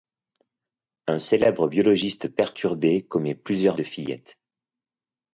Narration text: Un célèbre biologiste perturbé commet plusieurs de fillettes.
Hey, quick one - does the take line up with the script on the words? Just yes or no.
yes